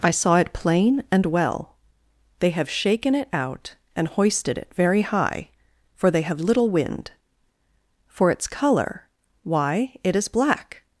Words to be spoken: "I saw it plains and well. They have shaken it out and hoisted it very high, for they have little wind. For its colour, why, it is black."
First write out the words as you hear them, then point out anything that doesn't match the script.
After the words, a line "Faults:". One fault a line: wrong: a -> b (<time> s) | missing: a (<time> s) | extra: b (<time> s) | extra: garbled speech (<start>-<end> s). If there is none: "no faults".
"I saw it plain and well. They have shaken it out and hoisted it very high, for they have little wind. For its colour, why, it is black."
Faults:
wrong: plains -> plain (0.5 s)